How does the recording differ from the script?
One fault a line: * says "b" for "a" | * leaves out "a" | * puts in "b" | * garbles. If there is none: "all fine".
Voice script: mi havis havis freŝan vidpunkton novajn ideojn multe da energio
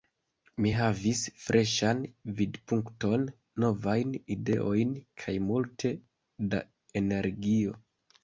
* leaves out "havis"
* puts in "kaj"